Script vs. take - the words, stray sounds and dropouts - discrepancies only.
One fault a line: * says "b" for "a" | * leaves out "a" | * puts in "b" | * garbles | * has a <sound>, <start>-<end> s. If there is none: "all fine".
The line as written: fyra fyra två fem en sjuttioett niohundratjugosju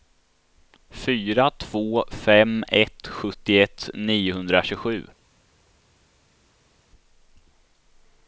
* leaves out "fyra"
* says "ett" for "en"